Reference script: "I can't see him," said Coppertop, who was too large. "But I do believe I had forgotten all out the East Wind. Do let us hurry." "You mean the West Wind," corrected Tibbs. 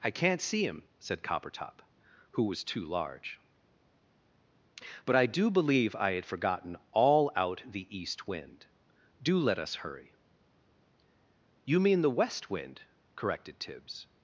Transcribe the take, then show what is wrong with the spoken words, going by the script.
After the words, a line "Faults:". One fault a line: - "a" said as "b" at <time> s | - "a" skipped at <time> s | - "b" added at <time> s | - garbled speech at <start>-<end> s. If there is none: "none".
"I can't see him," said Coppertop, who was too large. "But I do believe I had forgotten all out the East Wind. Do let us hurry." "You mean the West Wind," corrected Tibbs.
Faults:
none